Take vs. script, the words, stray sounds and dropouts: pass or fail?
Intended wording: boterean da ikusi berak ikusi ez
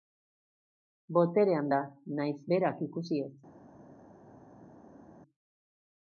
fail